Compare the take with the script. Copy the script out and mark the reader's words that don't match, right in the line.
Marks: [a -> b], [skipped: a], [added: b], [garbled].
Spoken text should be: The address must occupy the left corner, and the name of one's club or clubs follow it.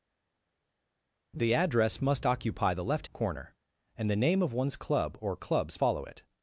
The address must occupy the left corner, and the name of one's club or clubs follow it.